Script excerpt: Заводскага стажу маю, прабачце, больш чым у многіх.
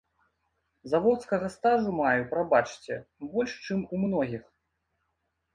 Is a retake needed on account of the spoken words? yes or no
no